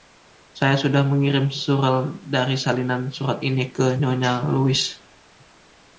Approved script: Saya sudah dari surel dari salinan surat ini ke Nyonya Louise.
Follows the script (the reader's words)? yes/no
no